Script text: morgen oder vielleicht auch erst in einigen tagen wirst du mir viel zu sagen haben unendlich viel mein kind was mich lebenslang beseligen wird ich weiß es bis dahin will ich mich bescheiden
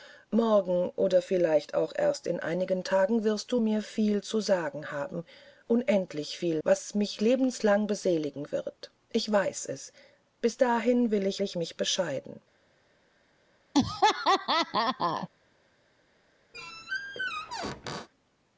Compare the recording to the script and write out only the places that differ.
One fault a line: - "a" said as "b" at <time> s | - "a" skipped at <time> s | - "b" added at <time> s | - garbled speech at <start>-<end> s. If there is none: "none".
- "mein kind" skipped at 6.6 s
- "ich" added at 11.4 s